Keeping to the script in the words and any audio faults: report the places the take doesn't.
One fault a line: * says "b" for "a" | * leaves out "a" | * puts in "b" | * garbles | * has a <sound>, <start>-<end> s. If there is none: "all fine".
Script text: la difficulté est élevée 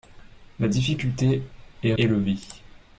all fine